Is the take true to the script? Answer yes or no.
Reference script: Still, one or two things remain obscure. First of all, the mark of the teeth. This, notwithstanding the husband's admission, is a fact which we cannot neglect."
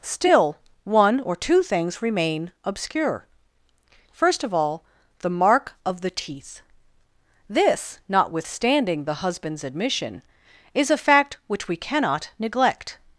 yes